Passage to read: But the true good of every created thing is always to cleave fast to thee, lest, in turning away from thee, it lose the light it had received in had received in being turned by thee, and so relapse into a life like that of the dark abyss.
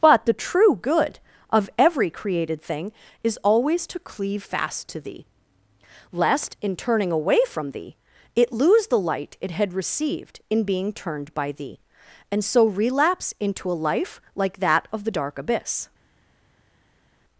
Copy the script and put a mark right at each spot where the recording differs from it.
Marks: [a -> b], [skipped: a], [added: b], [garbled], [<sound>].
But the true good of every created thing is always to cleave fast to thee, lest, in turning away from thee, it lose the light it had received in [skipped: had received in] being turned by thee, and so relapse into a life like that of the dark abyss.